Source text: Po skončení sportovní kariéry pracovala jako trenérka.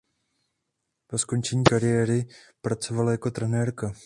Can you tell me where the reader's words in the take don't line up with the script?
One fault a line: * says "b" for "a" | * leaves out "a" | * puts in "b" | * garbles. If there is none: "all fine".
* leaves out "sportovní"